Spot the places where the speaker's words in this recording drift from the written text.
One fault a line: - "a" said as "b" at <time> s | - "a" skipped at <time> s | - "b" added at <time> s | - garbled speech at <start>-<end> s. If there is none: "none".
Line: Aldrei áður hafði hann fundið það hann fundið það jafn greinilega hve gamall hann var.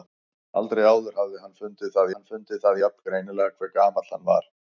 none